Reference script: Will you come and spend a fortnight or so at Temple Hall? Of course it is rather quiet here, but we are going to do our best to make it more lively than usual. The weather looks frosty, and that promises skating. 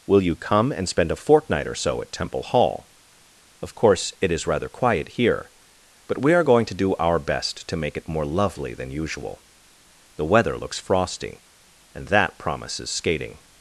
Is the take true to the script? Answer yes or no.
no